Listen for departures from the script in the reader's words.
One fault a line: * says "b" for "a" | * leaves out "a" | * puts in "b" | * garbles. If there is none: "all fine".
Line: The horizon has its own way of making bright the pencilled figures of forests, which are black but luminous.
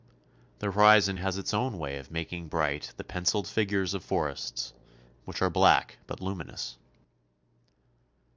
all fine